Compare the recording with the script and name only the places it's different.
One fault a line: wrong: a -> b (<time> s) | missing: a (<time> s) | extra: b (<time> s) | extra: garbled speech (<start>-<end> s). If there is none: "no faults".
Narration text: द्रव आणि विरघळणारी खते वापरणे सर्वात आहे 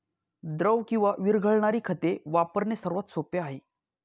wrong: आणि -> किंवा (0.9 s)
extra: सोपे (3.1 s)